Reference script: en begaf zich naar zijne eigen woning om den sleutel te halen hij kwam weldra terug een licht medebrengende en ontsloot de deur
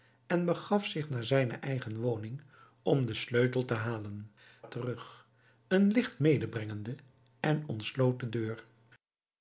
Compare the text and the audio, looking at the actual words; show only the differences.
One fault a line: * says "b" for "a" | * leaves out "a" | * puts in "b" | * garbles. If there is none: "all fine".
* leaves out "hij kwam weldra"